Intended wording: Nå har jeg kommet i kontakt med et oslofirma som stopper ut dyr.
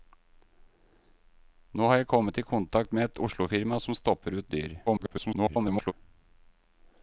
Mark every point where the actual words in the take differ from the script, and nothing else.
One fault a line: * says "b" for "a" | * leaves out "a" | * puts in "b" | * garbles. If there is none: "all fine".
* garbles